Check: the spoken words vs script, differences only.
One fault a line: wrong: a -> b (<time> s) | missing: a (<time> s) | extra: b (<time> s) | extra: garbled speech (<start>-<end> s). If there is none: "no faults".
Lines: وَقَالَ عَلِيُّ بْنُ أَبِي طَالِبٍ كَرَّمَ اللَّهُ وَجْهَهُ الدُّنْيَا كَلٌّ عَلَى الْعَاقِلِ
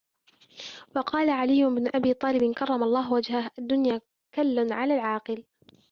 no faults